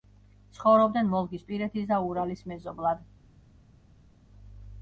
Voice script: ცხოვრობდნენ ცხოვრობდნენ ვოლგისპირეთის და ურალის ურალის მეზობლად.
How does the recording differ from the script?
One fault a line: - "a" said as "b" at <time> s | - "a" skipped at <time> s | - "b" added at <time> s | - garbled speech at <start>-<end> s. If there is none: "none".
- "ცხოვრობდნენ" skipped at 1.1 s
- "ურალის" skipped at 2.5 s